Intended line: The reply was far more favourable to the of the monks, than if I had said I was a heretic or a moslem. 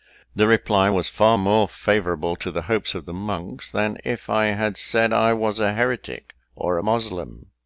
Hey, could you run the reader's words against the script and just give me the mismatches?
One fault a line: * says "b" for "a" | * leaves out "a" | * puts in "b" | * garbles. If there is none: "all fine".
* puts in "hopes"